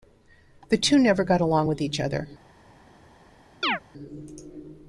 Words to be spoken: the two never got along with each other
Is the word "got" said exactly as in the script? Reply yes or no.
yes